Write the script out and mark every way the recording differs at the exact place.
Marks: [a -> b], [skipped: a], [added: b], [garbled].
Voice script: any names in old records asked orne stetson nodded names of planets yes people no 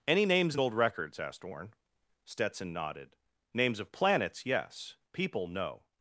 any names in old records asked orne stetson nodded names of planets yes people no